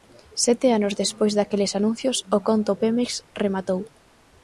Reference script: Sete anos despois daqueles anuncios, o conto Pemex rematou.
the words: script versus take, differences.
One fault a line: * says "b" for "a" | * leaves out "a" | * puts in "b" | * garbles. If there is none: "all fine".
all fine